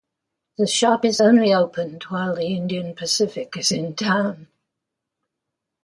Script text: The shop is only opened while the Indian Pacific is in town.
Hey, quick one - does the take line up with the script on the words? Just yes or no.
yes